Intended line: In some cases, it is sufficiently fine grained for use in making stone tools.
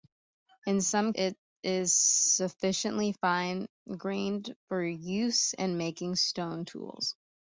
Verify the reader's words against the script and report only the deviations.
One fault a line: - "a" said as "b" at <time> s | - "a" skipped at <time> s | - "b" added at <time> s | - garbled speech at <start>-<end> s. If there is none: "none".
- "cases" skipped at 1.1 s